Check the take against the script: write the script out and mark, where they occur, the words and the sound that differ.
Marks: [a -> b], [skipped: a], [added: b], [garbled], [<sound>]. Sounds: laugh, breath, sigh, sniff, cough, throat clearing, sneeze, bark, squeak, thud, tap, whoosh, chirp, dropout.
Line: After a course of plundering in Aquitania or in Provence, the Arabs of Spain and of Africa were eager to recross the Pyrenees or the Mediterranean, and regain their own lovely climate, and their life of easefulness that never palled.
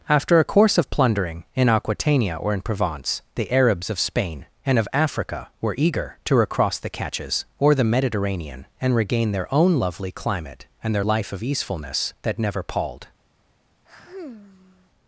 After a course of plundering in Aquitania or in Provence, the Arabs of Spain and of Africa were eager to recross the [Pyrenees -> Catches] or the Mediterranean, and regain their own lovely climate, and their life of easefulness that never palled. [sigh]